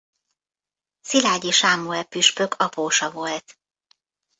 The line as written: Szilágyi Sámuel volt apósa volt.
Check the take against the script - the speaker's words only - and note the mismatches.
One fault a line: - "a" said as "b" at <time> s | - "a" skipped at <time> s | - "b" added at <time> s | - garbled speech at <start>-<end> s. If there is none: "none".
- "volt" said as "püspök" at 2.0 s